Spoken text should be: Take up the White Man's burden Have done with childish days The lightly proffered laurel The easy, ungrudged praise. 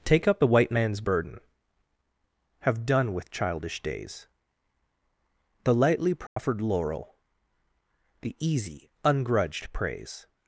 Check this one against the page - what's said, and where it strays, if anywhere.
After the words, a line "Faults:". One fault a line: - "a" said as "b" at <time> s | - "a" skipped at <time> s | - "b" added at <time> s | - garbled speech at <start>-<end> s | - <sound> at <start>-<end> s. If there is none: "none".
Take up the White Man's burden Have done with childish days The lightly proffered laurel The easy, ungrudged praise.
Faults:
- dropout at 6.3-6.4 s